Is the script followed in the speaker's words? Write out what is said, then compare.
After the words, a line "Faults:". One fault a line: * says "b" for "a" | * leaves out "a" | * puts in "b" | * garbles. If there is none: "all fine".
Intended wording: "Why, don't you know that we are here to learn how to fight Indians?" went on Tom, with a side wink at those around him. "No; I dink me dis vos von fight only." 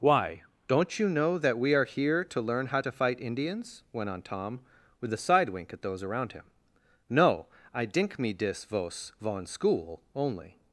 "Why, don't you know that we are here to learn how to fight Indians?" went on Tom, with a side wink at those around him. "No; I dink me dis vos von school only."
Faults:
* says "school" for "fight"